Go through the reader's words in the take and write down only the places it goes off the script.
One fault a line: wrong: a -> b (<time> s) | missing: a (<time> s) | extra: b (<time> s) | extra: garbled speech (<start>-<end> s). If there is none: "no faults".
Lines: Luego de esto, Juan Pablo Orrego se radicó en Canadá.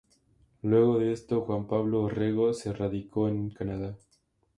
no faults